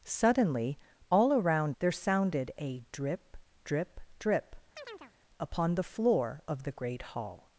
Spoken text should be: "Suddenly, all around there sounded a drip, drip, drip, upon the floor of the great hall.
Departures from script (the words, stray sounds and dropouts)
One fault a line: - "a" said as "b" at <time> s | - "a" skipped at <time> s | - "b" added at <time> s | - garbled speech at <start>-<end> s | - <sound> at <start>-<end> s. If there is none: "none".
- chirp at 4.8-5.1 s